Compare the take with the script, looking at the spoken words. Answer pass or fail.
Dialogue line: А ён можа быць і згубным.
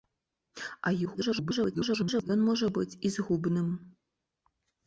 fail